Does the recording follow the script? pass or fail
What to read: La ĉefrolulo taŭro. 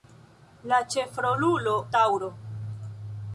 pass